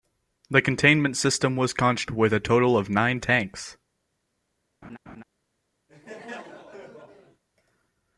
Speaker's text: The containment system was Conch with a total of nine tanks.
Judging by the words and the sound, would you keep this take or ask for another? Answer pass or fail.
fail